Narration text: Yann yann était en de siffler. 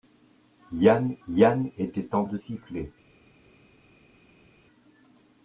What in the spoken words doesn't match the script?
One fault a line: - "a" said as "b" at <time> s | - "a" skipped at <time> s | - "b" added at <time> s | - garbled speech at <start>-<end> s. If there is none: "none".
none